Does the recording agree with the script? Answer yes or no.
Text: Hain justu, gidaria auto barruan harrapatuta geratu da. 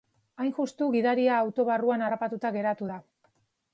yes